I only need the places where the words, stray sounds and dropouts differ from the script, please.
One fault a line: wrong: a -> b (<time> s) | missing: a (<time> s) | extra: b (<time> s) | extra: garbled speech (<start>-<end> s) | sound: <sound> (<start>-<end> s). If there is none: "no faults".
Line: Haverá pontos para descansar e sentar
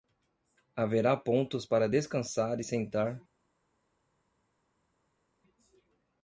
no faults